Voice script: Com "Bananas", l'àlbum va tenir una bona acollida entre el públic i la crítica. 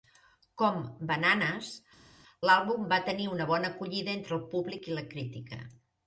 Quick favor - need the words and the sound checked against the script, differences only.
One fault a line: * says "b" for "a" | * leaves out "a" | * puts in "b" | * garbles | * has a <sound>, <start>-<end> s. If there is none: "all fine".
all fine